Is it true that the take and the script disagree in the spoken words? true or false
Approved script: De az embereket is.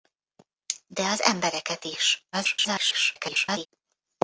true